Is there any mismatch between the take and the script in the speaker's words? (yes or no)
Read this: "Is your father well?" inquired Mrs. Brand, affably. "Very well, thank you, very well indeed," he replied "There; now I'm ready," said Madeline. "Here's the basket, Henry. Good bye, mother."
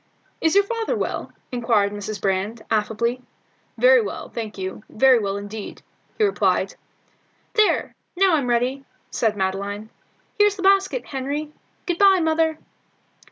no